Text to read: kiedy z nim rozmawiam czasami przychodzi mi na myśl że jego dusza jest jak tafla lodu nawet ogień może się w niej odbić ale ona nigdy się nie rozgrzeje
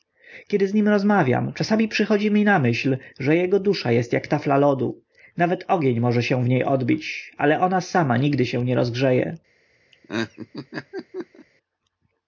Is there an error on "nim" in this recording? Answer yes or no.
no